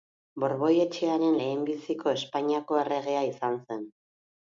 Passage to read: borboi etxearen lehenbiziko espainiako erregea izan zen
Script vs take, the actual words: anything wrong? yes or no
no